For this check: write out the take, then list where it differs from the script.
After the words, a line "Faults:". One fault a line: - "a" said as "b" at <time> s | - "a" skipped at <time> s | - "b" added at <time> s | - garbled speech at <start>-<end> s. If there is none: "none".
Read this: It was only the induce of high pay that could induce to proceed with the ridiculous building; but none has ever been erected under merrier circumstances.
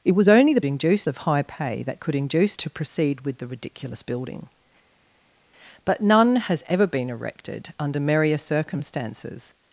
It was only the induce of high pay that could induce to proceed with the ridiculous building; but none has ever been erected under merrier circumstances.
Faults:
none